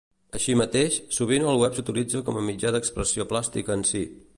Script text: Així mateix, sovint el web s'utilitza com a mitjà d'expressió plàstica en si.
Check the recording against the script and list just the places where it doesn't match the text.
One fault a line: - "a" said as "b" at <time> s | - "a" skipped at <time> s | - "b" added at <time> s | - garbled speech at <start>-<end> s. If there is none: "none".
none